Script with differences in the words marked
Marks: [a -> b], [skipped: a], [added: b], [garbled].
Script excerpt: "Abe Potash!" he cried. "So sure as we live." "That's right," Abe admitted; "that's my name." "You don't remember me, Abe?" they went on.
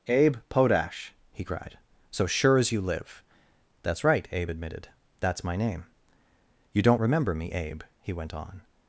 "Abe Potash!" he cried. "So sure as [we -> you] live." "That's right," Abe admitted; "that's my name." "You don't remember me, Abe?" [they -> he] went on.